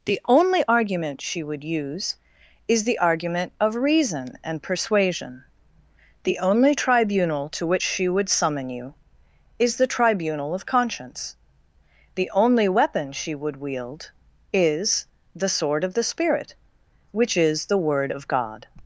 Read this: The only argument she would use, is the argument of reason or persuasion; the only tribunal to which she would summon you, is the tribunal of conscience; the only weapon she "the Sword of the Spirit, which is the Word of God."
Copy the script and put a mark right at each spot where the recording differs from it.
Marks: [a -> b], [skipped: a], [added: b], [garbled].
The only argument she would use, is the argument of reason [or -> and] persuasion; the only tribunal to which she would summon you, is the tribunal of conscience; the only weapon she [added: would wield is] "the Sword of the Spirit, which is the Word of God."